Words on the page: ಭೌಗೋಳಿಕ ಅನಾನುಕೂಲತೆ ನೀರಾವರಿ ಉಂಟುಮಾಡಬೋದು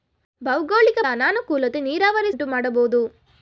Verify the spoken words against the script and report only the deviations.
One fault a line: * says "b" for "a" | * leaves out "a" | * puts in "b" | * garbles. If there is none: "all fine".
all fine